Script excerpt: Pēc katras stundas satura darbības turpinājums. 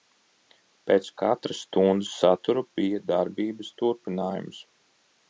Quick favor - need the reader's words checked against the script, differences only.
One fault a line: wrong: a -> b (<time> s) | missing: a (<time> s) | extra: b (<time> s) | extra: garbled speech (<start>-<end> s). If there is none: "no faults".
extra: bija (2.8 s)